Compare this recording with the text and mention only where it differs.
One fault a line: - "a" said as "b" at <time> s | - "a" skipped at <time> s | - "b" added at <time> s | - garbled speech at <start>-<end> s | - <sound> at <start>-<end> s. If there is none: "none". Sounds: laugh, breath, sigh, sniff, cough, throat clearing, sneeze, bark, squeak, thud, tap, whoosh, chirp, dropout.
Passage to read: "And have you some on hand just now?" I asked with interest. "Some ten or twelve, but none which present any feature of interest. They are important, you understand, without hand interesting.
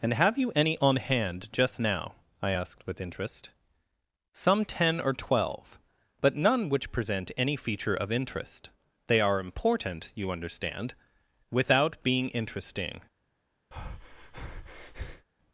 - "some" said as "any" at 0.6 s
- "hand" said as "being" at 12.0 s
- breath at 13.7-15.3 s